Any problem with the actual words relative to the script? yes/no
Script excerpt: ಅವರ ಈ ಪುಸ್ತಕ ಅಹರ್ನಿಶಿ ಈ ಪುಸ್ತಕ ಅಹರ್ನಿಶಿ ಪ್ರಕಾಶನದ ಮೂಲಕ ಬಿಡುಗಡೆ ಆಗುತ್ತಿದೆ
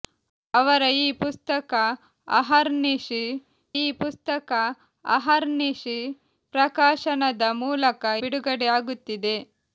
no